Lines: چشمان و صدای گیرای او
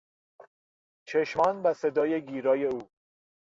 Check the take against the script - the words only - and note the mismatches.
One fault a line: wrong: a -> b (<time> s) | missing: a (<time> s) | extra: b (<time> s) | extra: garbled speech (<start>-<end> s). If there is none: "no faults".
no faults